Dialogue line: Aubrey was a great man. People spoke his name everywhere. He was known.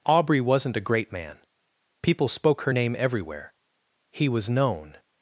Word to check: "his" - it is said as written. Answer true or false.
false